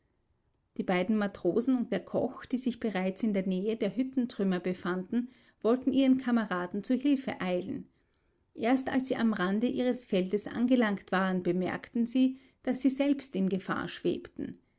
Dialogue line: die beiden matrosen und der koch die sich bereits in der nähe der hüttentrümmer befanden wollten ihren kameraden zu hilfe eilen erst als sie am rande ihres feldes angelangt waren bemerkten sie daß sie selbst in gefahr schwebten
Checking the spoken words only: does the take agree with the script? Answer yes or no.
yes